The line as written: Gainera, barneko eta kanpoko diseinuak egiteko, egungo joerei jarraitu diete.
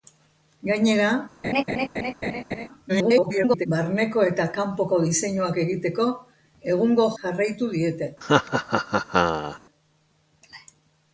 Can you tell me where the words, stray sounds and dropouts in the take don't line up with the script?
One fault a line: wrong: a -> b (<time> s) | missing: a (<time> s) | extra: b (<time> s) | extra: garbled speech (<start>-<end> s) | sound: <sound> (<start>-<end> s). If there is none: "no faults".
sound: laugh (1.4-2.7 s)
extra: garbled speech (2.9-3.7 s)
missing: joerei (7.1 s)
sound: laugh (8.2-9.6 s)